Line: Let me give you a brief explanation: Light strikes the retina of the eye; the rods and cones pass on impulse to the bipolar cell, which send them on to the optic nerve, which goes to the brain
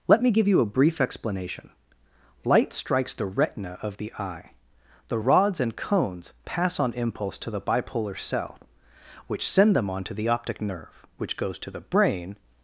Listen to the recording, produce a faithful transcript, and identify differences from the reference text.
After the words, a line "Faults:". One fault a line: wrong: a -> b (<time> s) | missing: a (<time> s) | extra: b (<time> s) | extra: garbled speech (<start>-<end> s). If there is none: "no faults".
Let me give you a brief explanation: Light strikes the retina of the eye; the rods and cones pass on impulse to the bipolar cell, which send them on to the optic nerve, which goes to the brain
Faults:
no faults